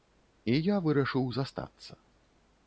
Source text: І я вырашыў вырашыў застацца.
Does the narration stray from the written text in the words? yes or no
yes